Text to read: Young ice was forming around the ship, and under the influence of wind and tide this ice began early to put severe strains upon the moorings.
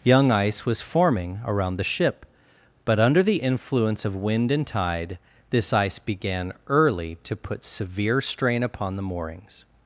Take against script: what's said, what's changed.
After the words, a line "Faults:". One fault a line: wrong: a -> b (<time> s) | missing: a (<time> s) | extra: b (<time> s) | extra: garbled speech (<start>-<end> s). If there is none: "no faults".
Young ice was forming around the ship, but under the influence of wind and tide this ice began early to put severe strain upon the moorings.
Faults:
wrong: and -> but (2.9 s)
wrong: strains -> strain (8.2 s)